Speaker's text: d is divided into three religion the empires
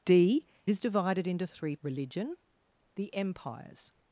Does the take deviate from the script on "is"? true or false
false